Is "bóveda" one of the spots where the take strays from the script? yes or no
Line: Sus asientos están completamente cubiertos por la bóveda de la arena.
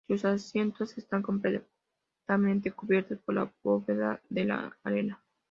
no